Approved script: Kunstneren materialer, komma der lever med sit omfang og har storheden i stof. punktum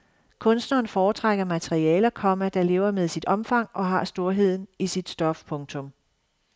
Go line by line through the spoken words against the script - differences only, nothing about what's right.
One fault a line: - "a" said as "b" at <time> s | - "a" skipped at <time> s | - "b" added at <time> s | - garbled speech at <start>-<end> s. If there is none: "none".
- "foretrækker" added at 0.9 s
- "sit" added at 4.9 s